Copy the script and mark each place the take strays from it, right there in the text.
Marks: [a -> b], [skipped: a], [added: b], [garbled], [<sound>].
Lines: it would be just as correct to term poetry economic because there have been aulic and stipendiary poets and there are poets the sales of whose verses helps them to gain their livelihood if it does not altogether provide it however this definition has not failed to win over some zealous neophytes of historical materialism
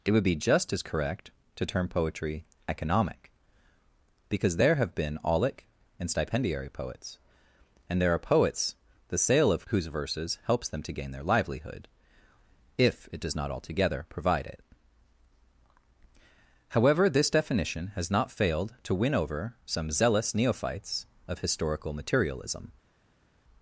it would be just as correct to term poetry economic because there have been aulic and stipendiary poets and there are poets the [sales -> sale] of whose verses helps them to gain their livelihood if it does not altogether provide it however this definition has not failed to win over some zealous neophytes of historical materialism